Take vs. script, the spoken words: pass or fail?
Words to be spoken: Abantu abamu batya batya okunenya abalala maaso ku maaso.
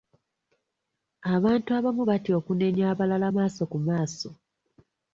fail